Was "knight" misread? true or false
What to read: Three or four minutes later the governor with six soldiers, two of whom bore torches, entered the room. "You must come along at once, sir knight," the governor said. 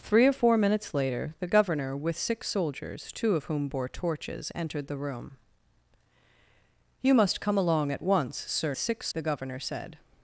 true